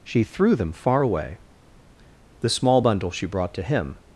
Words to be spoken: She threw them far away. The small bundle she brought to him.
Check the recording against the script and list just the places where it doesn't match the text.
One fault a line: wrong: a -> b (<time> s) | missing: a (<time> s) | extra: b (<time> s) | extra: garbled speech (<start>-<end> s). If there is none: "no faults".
no faults